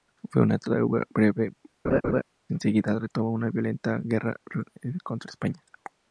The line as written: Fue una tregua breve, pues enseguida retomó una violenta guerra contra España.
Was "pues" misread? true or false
true